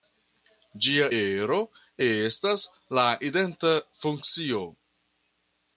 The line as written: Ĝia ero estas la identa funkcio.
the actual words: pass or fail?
pass